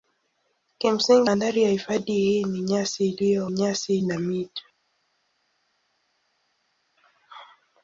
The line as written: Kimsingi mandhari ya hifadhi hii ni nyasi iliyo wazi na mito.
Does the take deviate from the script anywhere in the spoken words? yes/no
yes